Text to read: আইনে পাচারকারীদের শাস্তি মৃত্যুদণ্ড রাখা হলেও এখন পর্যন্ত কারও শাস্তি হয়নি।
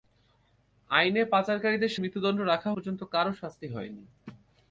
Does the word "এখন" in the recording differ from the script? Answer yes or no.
yes